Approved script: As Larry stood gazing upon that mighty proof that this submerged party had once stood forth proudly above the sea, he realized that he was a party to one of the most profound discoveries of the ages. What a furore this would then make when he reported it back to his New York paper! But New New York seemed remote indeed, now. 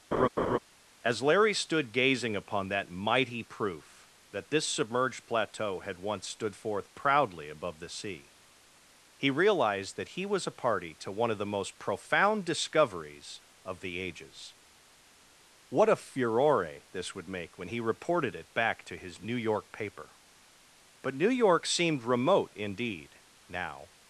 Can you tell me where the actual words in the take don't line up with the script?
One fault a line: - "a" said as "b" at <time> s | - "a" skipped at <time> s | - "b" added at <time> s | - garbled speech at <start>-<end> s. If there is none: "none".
- "party" said as "plateau" at 5.3 s
- "then" skipped at 17.3 s
- "New" skipped at 21.3 s